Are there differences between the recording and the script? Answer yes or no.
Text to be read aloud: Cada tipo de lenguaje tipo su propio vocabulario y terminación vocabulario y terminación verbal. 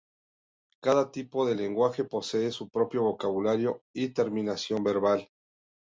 yes